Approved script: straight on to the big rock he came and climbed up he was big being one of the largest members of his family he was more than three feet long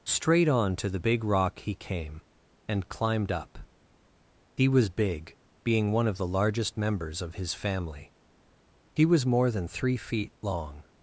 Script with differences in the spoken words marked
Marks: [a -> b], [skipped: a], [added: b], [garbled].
straight on to the big rock he came and climbed up he was big being one of the largest members of his family he was more than three feet long